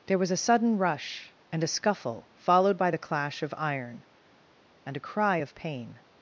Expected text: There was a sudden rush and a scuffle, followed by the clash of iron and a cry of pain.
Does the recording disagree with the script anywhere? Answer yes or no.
no